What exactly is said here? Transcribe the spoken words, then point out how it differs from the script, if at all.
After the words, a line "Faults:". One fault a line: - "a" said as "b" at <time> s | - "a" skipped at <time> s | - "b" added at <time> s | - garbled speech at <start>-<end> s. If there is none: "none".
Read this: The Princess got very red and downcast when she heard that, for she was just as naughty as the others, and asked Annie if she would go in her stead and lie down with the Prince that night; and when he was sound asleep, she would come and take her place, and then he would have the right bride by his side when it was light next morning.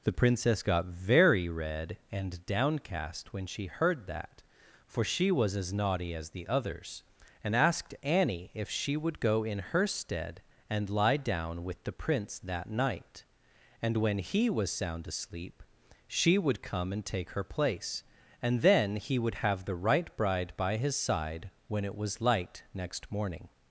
The Princess got very red and downcast when she heard that, for she was as naughty as the others, and asked Annie if she would go in her stead and lie down with the Prince that night; and when he was sound asleep, she would come and take her place, and then he would have the right bride by his side when it was light next morning.
Faults:
- "just" skipped at 5.5 s